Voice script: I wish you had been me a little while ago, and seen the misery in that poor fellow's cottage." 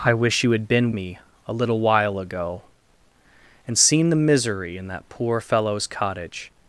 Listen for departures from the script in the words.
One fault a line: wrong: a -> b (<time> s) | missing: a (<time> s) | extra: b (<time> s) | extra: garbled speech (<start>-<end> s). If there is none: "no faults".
no faults